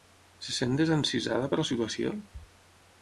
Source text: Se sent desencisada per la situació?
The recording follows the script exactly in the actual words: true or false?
true